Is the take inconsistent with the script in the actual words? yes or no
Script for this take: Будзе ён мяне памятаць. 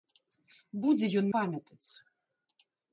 yes